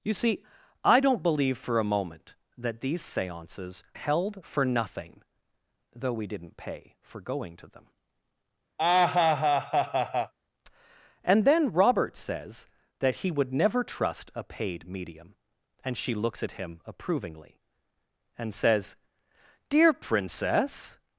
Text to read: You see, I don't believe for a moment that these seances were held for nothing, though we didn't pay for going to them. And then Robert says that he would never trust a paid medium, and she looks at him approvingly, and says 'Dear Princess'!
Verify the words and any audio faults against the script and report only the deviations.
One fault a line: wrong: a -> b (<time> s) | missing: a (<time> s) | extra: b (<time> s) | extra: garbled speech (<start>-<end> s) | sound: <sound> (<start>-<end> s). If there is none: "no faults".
missing: were (3.8 s)
sound: laugh (8.8-10.3 s)